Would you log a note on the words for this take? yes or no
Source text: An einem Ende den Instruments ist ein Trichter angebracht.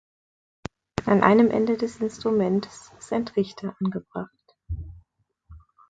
yes